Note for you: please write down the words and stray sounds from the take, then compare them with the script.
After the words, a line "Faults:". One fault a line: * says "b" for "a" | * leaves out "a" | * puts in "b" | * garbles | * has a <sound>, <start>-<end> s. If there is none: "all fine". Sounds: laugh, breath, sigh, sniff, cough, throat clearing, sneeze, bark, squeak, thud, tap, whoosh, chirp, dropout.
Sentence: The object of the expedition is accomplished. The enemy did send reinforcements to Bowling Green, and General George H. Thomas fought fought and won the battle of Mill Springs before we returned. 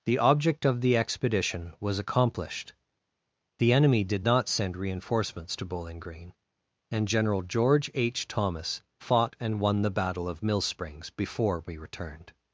The object of the expedition was accomplished. The enemy did not send reinforcements to Bowling Green, and General George H. Thomas fought and won the battle of Mill Springs before we returned.
Faults:
* says "was" for "is"
* puts in "not"
* leaves out "fought"